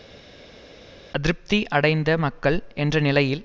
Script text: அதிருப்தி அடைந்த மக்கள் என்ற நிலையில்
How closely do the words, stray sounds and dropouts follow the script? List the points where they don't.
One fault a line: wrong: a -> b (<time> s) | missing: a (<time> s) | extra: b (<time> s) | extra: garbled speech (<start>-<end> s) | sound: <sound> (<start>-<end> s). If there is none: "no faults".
no faults